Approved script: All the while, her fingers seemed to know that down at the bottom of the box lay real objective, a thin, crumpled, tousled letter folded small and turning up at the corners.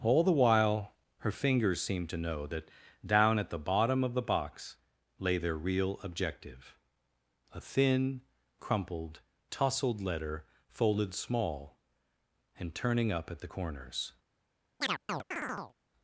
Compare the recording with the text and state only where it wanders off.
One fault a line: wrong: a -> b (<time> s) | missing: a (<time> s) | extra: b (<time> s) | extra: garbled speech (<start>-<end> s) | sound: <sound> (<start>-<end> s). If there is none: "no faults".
extra: their (5.4 s)
sound: chirp (14.8-15.7 s)